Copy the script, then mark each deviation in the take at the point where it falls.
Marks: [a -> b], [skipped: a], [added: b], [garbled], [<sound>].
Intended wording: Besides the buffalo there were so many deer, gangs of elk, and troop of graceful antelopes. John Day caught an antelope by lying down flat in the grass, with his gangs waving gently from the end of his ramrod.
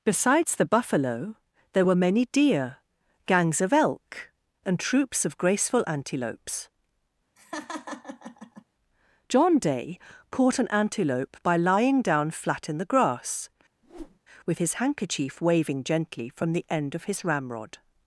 Besides the buffalo there were [skipped: so] many deer, gangs of elk, and [troop -> troops] of graceful antelopes. [laugh] John Day caught an antelope by lying down flat in the grass, [whoosh] with his [gangs -> handkerchief] waving gently from the end of his ramrod.